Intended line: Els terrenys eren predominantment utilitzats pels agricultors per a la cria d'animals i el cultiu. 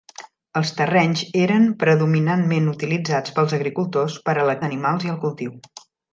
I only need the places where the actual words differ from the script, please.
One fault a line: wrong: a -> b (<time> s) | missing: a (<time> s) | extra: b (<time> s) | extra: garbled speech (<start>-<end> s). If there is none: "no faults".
missing: cria (4.6 s)